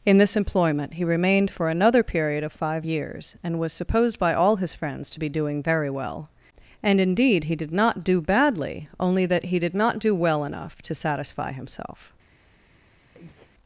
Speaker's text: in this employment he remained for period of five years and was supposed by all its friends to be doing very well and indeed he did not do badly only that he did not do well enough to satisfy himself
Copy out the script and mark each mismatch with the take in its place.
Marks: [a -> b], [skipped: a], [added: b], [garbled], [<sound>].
in this employment he remained for [added: another] period of five years and was supposed by all [its -> his] friends to be doing very well and indeed he did not do badly only that he did not do well enough to satisfy himself [breath]